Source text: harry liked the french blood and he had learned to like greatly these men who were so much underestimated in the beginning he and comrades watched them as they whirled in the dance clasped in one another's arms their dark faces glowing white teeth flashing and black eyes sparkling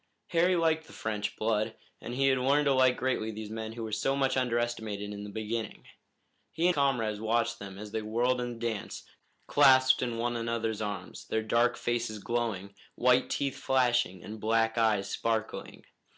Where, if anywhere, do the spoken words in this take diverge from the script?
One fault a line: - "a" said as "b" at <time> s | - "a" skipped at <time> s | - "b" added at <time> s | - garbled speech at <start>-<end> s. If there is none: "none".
none